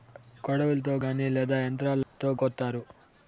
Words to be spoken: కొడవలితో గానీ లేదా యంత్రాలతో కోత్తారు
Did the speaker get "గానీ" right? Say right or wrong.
right